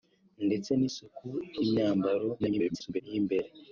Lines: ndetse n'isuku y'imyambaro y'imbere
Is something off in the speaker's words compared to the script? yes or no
yes